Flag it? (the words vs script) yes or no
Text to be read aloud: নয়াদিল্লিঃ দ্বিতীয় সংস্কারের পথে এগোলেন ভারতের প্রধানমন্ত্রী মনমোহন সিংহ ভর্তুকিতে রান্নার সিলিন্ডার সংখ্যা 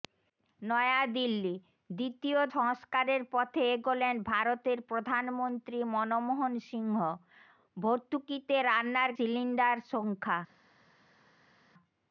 no